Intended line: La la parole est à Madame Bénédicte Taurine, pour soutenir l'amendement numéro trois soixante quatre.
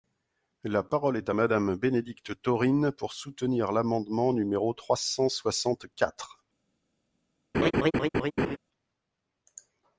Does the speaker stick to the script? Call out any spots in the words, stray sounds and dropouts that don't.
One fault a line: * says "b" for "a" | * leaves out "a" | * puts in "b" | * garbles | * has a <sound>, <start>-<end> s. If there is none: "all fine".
* leaves out "la"
* puts in "cent"
* has a laugh, 7.5-8.6 s